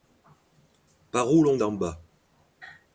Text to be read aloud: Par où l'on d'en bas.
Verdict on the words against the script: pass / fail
pass